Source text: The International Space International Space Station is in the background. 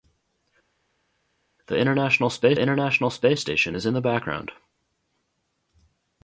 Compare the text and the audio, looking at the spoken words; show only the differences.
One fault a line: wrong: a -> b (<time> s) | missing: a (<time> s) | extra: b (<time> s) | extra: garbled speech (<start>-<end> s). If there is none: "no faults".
no faults